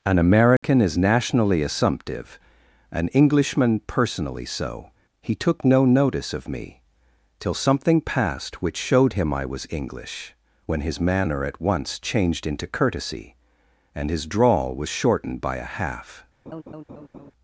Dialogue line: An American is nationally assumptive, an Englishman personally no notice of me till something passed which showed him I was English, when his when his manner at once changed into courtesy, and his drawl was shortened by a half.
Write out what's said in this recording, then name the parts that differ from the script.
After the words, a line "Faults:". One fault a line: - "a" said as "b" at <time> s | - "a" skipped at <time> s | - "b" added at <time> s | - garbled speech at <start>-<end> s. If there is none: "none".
An American is nationally assumptive, an Englishman personally so. He took no notice of me till something passed which showed him I was English, when his manner at once changed into courtesy, and his drawl was shortened by a half.
Faults:
- "so He took" added at 4.5 s
- "when his" skipped at 11.0 s